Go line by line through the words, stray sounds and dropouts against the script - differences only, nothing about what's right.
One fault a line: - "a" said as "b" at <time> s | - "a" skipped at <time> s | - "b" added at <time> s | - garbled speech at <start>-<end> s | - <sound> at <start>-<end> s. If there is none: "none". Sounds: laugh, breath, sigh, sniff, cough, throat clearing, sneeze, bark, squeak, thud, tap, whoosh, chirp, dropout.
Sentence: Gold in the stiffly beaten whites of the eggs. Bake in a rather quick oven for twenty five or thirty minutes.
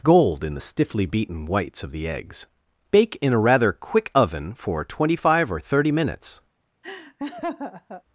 - laugh at 6.8-8.0 s